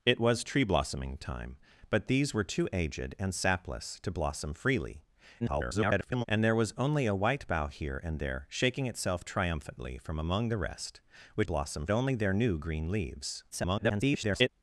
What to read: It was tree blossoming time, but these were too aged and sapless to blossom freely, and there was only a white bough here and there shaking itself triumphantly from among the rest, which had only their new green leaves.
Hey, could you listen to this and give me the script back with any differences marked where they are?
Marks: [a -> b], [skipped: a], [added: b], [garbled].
It was tree blossoming time, but these were too aged and sapless to blossom freely, [garbled] and there was only a white bough here and there shaking itself triumphantly from among the rest, which [had -> blossom] only their new green leaves. [garbled]